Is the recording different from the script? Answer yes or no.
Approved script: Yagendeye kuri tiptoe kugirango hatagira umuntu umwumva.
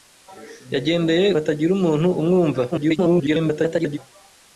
yes